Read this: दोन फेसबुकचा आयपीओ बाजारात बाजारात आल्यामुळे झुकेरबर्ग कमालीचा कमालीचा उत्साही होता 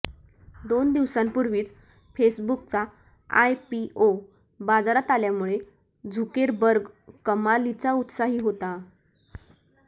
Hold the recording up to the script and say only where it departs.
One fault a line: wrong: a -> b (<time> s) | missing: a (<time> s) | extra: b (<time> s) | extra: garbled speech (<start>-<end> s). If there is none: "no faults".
extra: दिवसांपूर्वीच (0.9 s)
missing: बाजारात (5.1 s)
missing: कमालीचा (7.9 s)